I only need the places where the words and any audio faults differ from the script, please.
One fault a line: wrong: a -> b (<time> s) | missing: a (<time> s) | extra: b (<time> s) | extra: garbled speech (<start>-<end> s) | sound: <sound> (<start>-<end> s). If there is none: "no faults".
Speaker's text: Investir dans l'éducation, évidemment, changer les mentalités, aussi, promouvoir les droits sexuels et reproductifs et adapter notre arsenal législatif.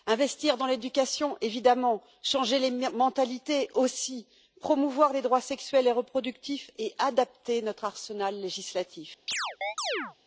sound: chirp (9.3-10.2 s)